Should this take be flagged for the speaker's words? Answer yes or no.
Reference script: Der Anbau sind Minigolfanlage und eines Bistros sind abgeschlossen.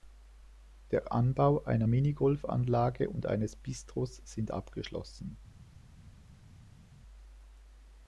yes